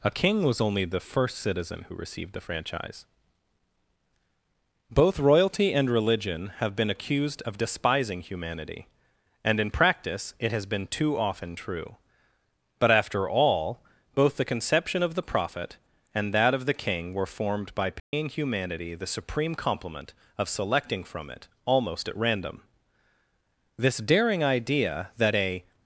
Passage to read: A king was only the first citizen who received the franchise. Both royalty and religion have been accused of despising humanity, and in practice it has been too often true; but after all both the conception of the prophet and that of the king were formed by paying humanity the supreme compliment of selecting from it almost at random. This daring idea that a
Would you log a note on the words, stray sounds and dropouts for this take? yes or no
yes